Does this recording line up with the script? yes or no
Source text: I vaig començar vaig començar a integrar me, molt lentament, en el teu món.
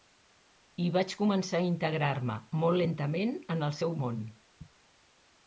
no